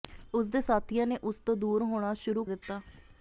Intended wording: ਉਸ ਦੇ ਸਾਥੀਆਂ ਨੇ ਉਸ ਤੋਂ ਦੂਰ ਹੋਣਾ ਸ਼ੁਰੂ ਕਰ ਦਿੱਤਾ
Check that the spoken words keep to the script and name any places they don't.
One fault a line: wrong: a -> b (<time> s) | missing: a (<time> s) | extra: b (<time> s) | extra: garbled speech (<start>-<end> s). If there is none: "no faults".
missing: ਕਰ (2.5 s)